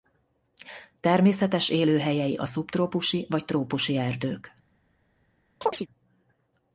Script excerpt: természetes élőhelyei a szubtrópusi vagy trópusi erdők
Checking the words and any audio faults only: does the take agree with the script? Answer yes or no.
no